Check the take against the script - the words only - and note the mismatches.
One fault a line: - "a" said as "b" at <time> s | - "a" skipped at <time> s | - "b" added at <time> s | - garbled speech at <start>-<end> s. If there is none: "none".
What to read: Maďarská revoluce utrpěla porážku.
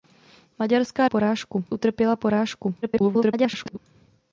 - "revoluce" said as "porážku" at 1.0 s
- garbled speech at 2.8-3.8 s